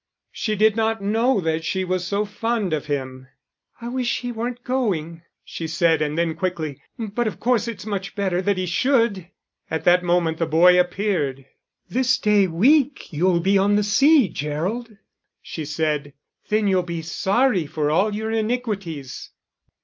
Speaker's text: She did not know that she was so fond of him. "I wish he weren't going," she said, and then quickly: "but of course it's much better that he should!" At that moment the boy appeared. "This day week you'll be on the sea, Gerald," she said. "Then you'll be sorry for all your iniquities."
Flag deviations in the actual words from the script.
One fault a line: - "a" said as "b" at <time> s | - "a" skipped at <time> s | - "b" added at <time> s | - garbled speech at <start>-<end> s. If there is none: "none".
none